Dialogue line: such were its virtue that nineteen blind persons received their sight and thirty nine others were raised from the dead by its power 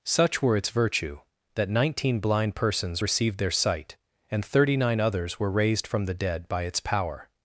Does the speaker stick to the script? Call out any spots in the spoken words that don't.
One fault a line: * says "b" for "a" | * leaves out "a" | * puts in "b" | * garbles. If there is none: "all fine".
all fine